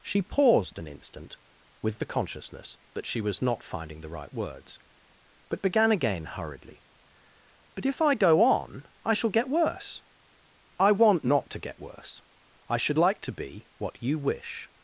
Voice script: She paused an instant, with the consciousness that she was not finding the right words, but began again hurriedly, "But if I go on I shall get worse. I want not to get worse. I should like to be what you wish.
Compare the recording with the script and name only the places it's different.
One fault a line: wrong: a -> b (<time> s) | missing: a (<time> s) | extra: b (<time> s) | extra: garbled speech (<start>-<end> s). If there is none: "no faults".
no faults